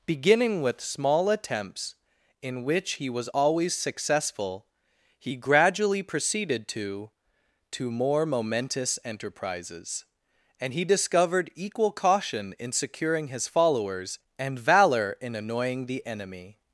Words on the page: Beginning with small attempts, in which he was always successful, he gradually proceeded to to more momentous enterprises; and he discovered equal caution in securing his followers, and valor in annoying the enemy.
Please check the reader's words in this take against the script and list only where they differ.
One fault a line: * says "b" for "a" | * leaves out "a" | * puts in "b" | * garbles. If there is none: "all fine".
all fine